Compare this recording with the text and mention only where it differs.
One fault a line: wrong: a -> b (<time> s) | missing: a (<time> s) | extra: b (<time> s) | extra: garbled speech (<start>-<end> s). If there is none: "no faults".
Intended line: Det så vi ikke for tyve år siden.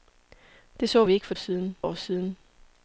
wrong: tyve -> siden (1.3 s)